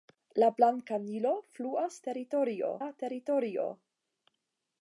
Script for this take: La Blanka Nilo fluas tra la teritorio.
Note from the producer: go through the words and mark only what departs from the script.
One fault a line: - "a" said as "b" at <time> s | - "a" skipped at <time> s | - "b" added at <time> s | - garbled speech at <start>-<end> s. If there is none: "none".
- "tra" said as "teritorio" at 2.1 s